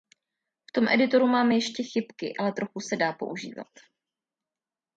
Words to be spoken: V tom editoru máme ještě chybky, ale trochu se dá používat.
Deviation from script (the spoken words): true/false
false